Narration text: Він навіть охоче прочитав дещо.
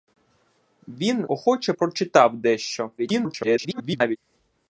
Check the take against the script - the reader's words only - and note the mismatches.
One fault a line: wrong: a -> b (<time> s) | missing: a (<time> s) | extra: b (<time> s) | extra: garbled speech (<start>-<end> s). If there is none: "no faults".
missing: навіть (1.2 s)
extra: garbled speech (3.0-4.2 s)